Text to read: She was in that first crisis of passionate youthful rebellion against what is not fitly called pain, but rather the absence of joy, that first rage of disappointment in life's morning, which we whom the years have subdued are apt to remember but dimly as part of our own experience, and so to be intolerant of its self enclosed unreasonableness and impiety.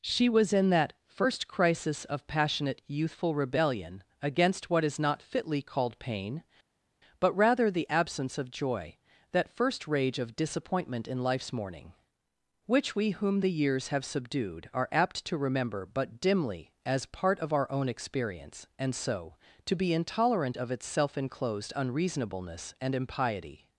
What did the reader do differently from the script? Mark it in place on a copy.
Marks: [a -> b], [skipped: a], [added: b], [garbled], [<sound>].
She was in that first crisis of passionate youthful rebellion against what is not fitly called pain, but rather the absence of joy, that first rage of disappointment in life's morning, which we whom the years have subdued are apt to remember but dimly as part of our own experience, and so to be intolerant of its self enclosed unreasonableness and impiety.